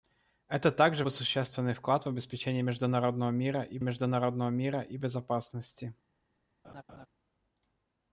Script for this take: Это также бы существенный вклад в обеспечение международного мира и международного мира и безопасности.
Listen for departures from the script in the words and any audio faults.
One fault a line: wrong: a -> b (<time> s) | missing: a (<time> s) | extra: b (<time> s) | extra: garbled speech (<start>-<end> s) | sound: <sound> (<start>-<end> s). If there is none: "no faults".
sound: laugh (6.6-7.1 s)